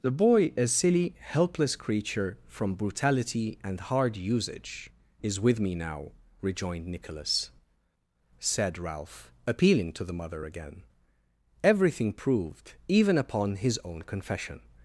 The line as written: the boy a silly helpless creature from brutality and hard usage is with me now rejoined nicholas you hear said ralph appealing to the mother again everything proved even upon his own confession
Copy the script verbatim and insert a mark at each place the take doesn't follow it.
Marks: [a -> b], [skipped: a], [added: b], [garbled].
the boy a silly helpless creature from brutality and hard usage is with me now rejoined nicholas [skipped: you hear] said ralph appealing to the mother again everything proved even upon his own confession